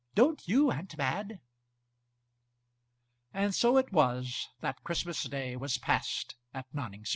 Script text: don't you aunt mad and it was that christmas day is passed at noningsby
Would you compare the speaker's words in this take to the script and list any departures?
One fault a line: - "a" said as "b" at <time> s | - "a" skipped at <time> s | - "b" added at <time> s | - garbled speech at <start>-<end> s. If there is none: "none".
- "so" added at 3.5 s
- "is" said as "was" at 5.6 s